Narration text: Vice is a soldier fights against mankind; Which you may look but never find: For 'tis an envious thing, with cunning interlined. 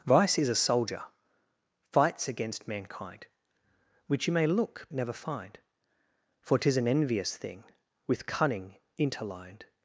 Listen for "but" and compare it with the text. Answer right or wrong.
wrong